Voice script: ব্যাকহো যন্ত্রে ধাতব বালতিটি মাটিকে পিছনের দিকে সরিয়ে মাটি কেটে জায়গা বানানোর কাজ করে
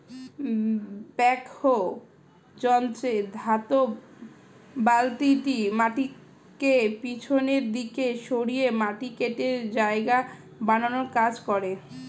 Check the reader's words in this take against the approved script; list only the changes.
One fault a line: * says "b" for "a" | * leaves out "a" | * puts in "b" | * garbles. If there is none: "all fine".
all fine